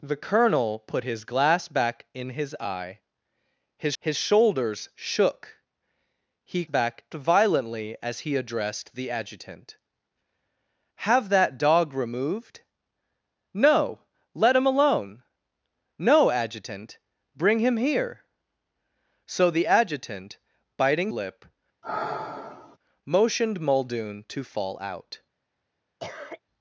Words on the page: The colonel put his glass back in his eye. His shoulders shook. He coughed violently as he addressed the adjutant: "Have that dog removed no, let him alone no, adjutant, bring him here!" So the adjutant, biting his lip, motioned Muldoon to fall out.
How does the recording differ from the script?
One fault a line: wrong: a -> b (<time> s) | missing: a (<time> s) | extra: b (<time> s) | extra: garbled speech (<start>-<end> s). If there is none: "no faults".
extra: his (4.0 s)
wrong: coughed -> back (6.7 s)
missing: his (21.1 s)